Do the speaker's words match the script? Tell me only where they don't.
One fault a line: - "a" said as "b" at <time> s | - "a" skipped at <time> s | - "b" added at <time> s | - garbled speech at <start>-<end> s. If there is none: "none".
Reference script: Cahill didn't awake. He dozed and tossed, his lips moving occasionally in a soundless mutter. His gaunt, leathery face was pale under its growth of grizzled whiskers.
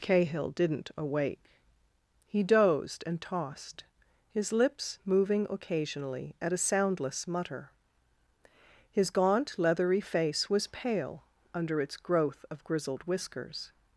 - "in" said as "at" at 6.4 s